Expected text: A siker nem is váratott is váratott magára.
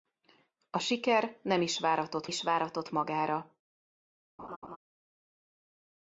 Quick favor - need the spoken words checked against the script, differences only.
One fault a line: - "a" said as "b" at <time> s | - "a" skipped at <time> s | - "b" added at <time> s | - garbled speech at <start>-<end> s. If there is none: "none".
none